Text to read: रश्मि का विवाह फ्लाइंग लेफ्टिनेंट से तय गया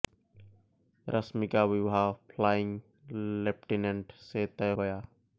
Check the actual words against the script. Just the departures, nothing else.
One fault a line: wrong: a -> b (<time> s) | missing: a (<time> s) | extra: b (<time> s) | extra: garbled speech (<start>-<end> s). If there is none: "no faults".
no faults